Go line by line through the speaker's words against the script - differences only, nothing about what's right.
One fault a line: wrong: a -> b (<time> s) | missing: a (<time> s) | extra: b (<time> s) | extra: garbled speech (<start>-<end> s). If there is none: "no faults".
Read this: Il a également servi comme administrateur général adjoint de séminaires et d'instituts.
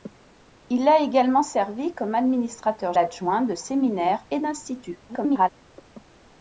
missing: général (2.9 s)
extra: garbled speech (5.1-5.5 s)